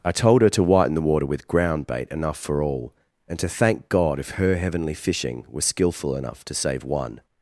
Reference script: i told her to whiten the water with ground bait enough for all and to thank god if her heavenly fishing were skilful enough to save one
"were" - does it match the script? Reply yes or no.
no